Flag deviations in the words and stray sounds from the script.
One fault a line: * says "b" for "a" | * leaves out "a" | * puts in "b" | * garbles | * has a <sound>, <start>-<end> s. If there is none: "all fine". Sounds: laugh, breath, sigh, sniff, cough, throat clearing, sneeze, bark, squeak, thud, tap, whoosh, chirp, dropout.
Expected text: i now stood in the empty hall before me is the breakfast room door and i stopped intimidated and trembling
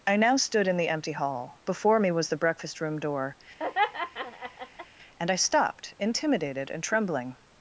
* says "was" for "is"
* has a laugh, 3.6-4.9 s